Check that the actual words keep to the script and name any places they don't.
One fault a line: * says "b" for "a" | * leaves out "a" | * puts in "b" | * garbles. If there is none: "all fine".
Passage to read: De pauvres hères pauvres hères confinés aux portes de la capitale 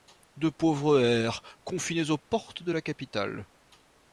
* leaves out "pauvres hères"